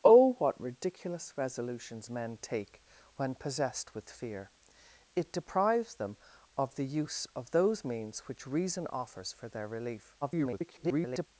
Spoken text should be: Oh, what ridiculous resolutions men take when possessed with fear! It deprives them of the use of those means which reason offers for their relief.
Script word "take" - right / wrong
right